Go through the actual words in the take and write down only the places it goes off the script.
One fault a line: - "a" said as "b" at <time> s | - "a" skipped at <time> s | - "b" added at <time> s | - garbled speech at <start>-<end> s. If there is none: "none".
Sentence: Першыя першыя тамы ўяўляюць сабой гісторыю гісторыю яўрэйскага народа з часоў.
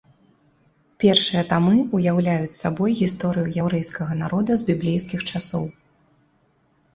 - "першыя" skipped at 1.4 s
- "гісторыю" skipped at 3.5 s
- "біблейскіх" added at 4.7 s